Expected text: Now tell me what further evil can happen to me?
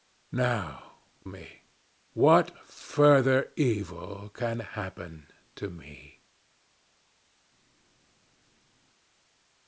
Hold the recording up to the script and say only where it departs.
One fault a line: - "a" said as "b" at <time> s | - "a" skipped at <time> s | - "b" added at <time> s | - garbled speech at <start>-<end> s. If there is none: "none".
- "tell" skipped at 0.9 s